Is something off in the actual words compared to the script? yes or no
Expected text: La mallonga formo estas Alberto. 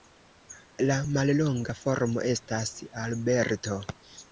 no